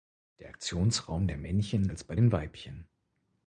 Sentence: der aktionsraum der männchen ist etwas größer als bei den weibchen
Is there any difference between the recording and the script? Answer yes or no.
yes